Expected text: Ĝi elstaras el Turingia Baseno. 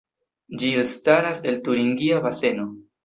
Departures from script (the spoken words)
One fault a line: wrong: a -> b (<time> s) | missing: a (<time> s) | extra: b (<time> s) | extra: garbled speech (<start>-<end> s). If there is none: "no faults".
no faults